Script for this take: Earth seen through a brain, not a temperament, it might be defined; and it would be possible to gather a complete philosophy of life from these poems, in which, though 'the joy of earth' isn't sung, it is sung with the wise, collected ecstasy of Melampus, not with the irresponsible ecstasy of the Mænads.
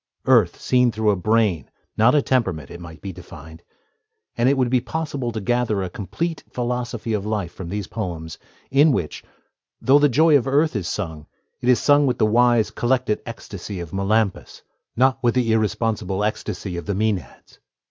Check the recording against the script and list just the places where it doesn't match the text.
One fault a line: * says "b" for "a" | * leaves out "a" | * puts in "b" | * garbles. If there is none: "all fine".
* says "is" for "isn't"